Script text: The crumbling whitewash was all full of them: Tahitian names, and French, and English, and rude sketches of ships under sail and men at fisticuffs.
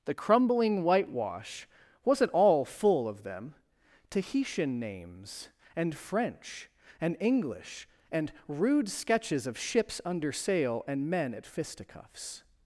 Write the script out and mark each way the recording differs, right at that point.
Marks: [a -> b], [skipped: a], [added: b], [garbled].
The crumbling whitewash [was -> wasn't] all full of them: Tahitian names, and French, and English, and rude sketches of ships under sail and men at fisticuffs.